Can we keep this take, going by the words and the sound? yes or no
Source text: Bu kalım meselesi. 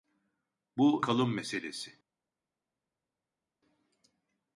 yes